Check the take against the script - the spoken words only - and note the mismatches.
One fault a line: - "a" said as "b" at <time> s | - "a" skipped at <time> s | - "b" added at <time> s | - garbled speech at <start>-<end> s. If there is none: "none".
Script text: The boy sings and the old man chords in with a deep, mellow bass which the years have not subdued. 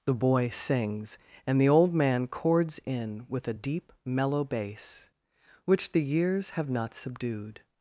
none